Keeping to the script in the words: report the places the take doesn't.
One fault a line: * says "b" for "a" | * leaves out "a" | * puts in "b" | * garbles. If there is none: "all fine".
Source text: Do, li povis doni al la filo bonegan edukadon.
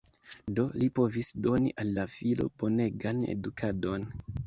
all fine